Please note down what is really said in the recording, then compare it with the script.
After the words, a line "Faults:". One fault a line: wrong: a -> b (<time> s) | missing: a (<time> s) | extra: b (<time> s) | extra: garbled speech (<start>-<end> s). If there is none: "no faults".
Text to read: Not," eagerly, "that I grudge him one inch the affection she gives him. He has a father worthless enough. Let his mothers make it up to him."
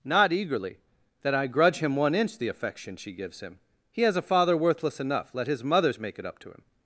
Not," eagerly, "that I grudge him one inch the affection she gives him. He has a father worthless enough. Let his mothers make it up to him."
Faults:
no faults